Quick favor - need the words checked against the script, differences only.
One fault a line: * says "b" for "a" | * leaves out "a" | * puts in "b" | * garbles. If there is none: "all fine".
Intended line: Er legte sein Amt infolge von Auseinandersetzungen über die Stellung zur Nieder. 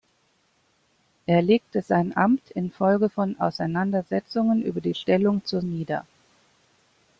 all fine